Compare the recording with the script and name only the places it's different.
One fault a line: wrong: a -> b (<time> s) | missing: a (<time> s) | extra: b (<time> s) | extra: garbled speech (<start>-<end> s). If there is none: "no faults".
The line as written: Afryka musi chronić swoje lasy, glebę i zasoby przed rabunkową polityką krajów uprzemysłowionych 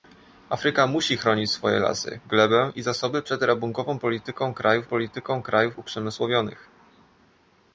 extra: polityką krajów (4.9 s)